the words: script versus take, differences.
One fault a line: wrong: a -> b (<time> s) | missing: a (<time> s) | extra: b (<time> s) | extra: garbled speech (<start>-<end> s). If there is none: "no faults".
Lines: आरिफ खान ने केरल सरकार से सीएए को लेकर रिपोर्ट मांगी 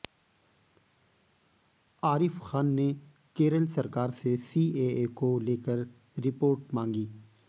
no faults